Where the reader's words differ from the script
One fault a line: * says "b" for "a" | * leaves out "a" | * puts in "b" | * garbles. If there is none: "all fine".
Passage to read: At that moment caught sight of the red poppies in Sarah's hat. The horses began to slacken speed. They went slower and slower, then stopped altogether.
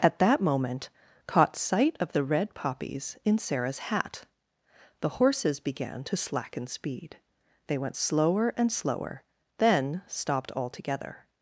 all fine